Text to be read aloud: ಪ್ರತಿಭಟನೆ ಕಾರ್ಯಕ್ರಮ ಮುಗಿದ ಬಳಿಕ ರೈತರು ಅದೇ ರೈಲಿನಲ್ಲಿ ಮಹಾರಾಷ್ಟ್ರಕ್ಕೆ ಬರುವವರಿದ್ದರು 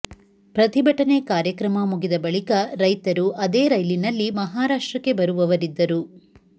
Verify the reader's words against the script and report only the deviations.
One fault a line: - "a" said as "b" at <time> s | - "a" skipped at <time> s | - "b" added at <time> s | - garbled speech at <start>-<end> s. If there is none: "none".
none